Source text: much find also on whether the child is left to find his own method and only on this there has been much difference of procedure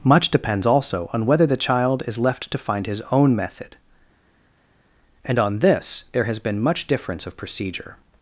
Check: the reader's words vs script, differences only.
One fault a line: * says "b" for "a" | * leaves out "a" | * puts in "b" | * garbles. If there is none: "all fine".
* says "depends" for "find"
* leaves out "only"